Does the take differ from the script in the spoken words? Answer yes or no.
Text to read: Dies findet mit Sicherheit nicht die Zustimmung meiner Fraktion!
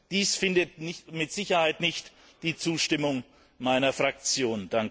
no